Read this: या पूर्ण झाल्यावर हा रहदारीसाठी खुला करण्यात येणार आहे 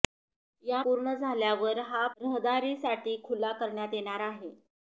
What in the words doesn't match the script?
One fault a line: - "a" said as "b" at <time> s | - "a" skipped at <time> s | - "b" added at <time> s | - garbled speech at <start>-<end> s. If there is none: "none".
none